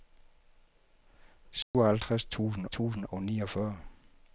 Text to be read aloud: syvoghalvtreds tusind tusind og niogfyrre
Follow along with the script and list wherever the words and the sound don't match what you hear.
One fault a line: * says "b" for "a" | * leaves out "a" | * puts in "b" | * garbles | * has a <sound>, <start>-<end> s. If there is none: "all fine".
* has a dropout, 1.6-1.7 s